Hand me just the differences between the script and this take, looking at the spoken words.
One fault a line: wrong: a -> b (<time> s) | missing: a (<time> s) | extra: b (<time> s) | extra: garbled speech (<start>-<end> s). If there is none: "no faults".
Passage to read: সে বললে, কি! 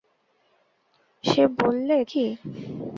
no faults